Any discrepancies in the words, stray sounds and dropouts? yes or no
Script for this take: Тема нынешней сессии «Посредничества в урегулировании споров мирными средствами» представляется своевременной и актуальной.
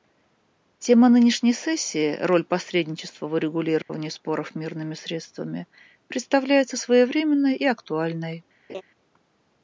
yes